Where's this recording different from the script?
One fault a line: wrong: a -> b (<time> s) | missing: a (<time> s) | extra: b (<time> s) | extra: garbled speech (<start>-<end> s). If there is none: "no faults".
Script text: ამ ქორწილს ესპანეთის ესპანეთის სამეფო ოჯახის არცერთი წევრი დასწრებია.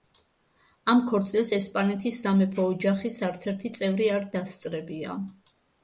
missing: ესპანეთის (2.2 s)
extra: არ (4.2 s)